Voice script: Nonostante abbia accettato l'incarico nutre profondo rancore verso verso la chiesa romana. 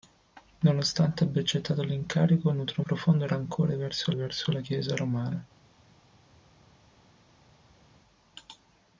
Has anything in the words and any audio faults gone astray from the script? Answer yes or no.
no